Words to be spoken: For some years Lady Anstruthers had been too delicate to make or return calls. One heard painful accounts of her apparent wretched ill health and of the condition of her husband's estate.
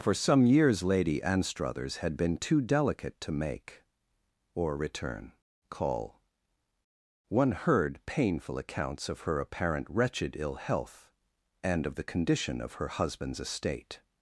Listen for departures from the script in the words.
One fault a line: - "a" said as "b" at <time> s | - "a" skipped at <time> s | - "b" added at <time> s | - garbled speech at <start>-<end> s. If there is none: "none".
- "calls" said as "call" at 5.7 s